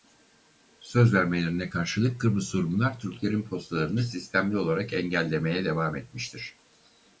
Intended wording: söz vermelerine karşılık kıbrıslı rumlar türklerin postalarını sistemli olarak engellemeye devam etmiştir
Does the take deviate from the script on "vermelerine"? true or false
false